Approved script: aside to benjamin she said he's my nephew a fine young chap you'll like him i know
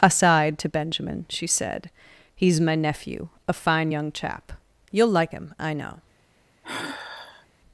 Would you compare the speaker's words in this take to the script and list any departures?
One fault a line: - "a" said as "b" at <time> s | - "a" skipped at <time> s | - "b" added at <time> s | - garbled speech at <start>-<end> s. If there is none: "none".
none